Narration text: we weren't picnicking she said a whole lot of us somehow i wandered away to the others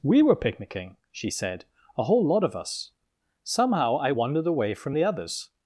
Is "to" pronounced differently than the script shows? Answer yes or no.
yes